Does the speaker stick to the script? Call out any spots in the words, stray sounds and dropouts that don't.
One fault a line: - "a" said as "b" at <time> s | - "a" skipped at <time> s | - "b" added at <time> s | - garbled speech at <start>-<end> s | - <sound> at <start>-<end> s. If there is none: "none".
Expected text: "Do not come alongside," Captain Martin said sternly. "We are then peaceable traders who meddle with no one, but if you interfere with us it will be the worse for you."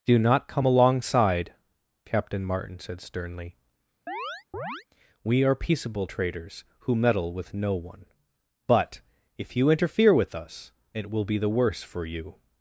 - chirp at 4.1-4.8 s
- "then" skipped at 5.5 s